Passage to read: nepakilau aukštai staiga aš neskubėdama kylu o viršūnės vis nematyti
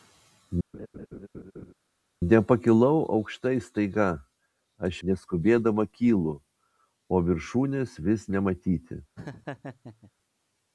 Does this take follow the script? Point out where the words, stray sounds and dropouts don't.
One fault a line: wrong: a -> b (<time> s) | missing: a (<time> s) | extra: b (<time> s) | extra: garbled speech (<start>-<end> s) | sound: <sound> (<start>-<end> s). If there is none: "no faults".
sound: laugh (0.7-1.7 s)
sound: laugh (9.2-10.1 s)